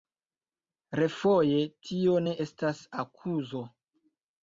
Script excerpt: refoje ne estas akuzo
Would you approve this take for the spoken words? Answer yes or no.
no